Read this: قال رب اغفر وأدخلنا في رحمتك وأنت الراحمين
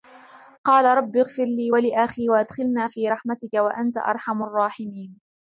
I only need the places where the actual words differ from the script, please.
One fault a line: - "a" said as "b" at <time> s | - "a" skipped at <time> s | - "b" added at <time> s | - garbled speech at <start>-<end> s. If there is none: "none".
- "لي ولأخي" added at 1.4 s
- "أرحم" added at 4.0 s